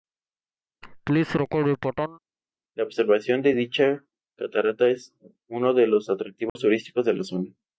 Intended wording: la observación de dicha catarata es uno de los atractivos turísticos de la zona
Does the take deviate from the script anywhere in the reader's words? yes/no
no